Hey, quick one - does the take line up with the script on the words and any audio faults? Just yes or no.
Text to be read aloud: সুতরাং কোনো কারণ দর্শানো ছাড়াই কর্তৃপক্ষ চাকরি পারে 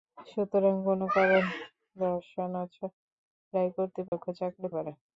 no